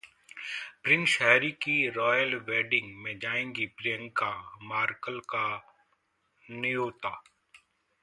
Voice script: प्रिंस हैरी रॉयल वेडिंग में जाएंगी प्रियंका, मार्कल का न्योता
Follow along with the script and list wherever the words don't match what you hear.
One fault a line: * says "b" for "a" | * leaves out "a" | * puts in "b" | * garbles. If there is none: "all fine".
* puts in "की"